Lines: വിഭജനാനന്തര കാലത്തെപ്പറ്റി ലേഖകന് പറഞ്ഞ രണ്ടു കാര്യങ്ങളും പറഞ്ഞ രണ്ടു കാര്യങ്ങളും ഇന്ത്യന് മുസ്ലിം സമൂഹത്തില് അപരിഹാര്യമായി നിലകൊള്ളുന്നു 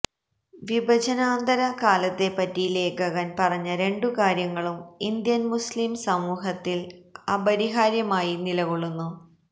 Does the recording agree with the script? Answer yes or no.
no